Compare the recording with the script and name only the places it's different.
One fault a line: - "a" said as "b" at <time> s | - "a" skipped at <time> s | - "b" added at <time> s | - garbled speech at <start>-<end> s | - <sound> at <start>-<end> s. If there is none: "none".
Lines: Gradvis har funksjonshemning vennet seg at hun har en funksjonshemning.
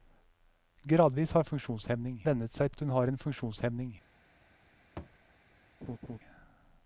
- thud at 5.0-5.2 s
- laugh at 5.8-6.2 s